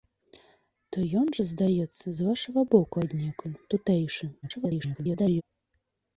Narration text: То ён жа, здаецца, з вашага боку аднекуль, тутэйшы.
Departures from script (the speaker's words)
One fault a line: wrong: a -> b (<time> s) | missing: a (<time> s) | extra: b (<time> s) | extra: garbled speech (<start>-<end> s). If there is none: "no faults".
extra: garbled speech (4.4-5.4 s)